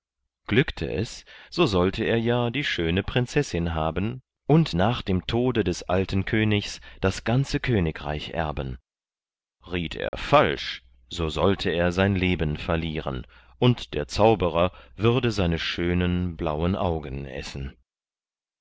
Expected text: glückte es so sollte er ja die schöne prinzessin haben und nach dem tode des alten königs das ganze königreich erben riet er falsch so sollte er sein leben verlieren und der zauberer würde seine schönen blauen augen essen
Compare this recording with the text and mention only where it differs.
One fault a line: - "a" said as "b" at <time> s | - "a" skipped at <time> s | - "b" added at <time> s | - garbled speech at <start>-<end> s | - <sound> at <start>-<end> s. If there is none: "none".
- dropout at 10.1-10.1 s